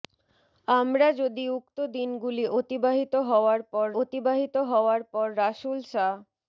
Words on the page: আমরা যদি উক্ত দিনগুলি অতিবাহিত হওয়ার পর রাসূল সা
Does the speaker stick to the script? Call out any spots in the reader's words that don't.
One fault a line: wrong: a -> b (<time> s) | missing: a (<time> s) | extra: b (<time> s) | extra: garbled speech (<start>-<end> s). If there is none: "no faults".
extra: অতিবাহিত হওয়ার পর (4.0 s)